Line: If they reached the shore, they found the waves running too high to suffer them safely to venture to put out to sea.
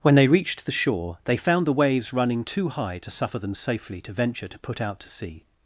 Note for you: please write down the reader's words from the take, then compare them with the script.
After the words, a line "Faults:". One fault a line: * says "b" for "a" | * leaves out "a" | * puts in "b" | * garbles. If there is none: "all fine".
When they reached the shore, they found the waves running too high to suffer them safely to venture to put out to sea.
Faults:
* says "When" for "If"